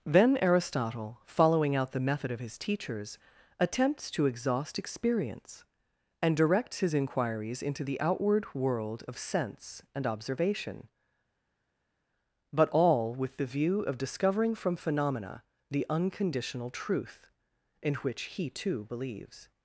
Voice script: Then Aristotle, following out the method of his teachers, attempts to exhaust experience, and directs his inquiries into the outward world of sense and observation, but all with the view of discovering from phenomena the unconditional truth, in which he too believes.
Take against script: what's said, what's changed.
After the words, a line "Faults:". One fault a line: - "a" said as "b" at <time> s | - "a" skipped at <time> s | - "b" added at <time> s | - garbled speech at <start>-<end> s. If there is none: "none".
Then Aristotle, following out the method of his teachers, attempts to exhaust experience, and directs his inquiries into the outward world of sense and observation, but all with the view of discovering from phenomena the unconditional truth, in which he too believes.
Faults:
none